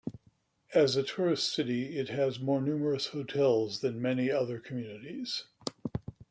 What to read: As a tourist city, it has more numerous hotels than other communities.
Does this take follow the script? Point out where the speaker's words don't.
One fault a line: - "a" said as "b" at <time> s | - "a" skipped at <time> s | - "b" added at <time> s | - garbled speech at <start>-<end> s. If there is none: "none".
- "many" added at 4.0 s